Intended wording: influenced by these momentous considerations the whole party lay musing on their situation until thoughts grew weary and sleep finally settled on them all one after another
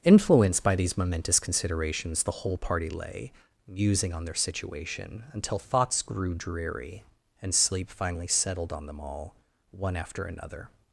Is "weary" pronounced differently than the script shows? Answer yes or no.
yes